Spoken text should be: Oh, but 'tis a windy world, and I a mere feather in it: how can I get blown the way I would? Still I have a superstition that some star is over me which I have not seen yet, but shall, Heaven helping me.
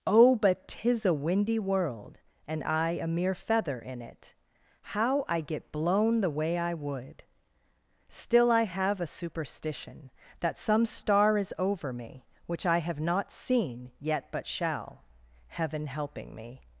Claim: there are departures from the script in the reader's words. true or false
true